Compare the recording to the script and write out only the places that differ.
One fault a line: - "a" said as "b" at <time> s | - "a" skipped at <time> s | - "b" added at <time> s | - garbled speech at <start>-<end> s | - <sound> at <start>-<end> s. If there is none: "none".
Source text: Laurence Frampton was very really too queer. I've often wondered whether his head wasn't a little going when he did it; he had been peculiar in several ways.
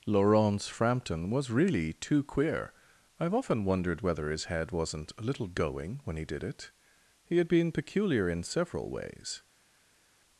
- "very" skipped at 1.5 s